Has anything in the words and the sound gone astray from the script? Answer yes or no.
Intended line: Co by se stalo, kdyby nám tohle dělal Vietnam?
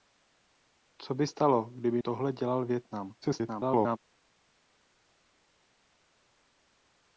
yes